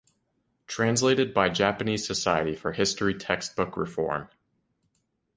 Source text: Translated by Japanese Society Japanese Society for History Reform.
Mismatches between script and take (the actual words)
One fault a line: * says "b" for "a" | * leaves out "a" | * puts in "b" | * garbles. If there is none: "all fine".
* leaves out "Japanese Society"
* puts in "Textbook"